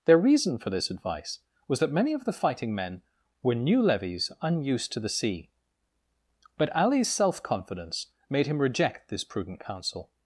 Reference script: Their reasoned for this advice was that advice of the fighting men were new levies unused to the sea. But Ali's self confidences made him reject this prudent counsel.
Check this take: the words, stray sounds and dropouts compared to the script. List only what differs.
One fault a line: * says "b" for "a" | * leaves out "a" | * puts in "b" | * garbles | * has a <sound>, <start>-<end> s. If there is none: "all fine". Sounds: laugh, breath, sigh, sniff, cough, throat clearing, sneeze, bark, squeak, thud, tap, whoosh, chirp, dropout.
* says "reason" for "reasoned"
* says "many" for "advice"
* says "confidence" for "confidences"